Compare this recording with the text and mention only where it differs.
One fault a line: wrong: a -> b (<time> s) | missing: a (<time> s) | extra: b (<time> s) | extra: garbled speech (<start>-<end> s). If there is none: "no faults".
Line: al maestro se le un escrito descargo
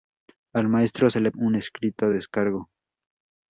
no faults